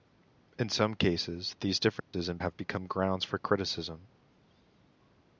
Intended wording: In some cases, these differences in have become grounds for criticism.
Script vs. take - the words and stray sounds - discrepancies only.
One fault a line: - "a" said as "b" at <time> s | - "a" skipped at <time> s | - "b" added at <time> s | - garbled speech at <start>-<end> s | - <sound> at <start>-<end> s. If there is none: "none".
- dropout at 2.0-2.1 s